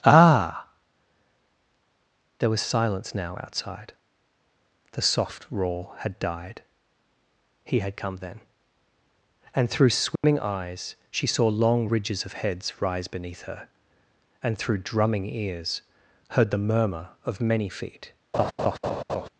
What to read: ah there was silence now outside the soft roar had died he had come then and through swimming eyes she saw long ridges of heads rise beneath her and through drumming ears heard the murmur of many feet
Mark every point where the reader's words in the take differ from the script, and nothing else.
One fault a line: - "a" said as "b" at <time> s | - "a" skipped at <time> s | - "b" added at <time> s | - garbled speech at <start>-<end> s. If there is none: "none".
none